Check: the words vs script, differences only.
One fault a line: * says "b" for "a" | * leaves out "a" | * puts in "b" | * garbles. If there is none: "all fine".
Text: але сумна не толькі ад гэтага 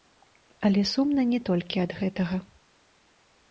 all fine